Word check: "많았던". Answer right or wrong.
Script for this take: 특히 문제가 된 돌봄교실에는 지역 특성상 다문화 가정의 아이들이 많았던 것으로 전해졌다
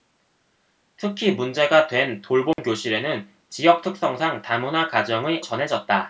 wrong